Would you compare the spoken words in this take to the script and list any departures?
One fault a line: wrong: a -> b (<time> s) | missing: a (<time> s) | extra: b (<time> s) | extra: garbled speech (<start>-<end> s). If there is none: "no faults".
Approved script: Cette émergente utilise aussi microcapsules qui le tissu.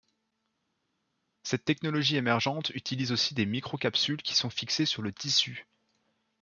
extra: technologie (1.6 s)
extra: des (3.4 s)
extra: sont fixées sur (4.3 s)